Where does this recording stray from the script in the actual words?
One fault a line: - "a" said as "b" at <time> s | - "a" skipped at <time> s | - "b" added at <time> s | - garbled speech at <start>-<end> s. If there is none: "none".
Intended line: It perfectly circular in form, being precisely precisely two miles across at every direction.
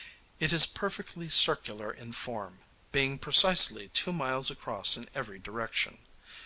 - "is" added at 0.5 s
- "precisely" skipped at 3.9 s
- "at" said as "in" at 5.0 s